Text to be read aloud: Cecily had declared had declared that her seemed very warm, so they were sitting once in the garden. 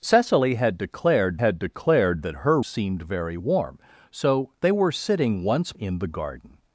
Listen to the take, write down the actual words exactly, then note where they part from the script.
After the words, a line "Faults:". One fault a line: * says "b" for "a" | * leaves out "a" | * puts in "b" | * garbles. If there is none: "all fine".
Cecily had declared had declared that her seemed very warm, so they were sitting once in the garden.
Faults:
all fine